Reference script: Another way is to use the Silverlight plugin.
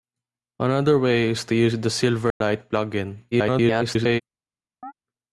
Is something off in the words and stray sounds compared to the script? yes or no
yes